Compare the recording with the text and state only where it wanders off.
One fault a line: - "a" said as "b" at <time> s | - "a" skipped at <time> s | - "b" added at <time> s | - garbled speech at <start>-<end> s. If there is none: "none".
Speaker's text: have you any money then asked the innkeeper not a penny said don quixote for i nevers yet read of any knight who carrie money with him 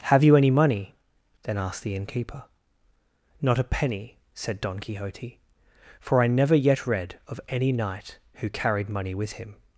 - "nevers" said as "never" at 6.3 s
- "carrie" said as "carried" at 8.5 s